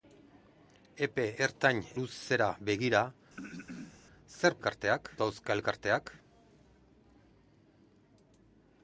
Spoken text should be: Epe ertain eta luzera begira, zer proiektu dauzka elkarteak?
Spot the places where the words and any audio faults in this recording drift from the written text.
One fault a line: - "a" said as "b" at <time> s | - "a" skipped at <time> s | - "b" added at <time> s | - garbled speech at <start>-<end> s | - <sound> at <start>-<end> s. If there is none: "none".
- "eta" skipped at 1.8 s
- throat clearing at 3.3-4.0 s
- "proiektu" said as "elkarteak" at 4.6 s